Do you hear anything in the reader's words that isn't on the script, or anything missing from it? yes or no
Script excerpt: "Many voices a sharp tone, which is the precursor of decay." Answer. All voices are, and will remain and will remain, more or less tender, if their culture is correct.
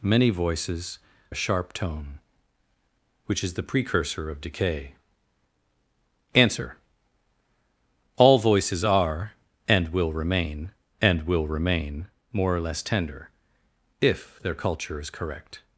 no